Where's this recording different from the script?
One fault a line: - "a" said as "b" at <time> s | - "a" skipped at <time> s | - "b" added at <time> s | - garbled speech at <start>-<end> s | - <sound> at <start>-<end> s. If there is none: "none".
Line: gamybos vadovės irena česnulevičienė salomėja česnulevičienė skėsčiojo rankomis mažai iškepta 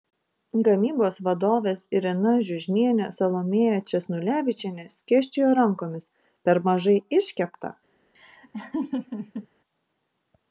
- "česnulevičienė" said as "žiužnienė" at 2.5 s
- "per" added at 6.5 s
- laugh at 8.1-9.5 s